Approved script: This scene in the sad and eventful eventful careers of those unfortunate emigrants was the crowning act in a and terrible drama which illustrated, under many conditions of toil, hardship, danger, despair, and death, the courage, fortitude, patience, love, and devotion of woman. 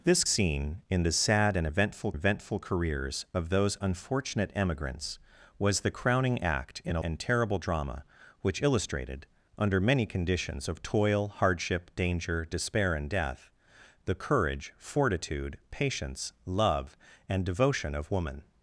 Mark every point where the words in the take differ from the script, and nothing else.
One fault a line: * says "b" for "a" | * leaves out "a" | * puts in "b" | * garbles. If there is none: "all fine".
all fine